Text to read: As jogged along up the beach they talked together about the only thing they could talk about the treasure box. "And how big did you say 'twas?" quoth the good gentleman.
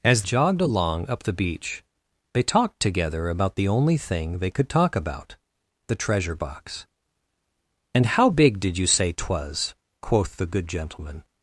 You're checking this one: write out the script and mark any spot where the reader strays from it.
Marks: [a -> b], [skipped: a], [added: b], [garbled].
As jogged along up the beach they talked together about the only thing they could talk about the treasure box. "And how big did you say 'twas?" quoth the good gentleman.